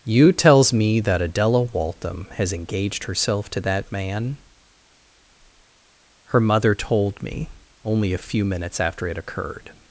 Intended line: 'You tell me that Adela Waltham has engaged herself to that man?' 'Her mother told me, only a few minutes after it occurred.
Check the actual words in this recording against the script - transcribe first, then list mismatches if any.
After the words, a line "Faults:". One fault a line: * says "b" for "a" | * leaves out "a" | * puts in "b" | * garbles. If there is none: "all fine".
'You tells me that Adela Waltham has engaged herself to that man?' 'Her mother told me, only a few minutes after it occurred.
Faults:
* says "tells" for "tell"